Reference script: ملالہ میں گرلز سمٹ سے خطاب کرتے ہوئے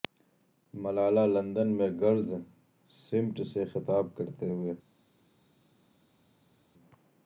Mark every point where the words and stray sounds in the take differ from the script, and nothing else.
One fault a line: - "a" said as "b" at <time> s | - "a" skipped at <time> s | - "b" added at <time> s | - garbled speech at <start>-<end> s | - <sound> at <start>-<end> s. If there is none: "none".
- "لندن" added at 1.3 s